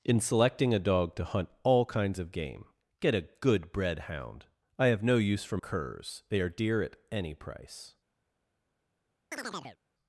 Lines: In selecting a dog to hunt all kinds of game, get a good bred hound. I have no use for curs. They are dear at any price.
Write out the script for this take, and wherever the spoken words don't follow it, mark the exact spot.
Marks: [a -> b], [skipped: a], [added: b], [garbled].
In selecting a dog to hunt all kinds of game, get a good bred hound. I have no use for curs. They are dear at any price.